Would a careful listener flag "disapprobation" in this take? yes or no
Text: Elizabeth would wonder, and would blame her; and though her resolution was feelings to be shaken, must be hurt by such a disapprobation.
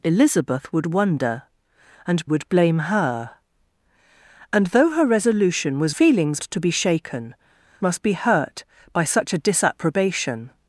no